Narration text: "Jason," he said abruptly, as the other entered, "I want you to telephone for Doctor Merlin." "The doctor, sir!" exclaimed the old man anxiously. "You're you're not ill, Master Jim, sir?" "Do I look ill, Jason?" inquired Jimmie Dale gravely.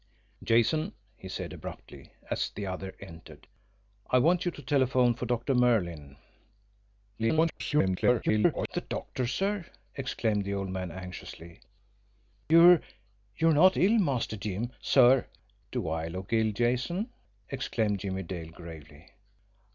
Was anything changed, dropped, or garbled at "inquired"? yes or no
yes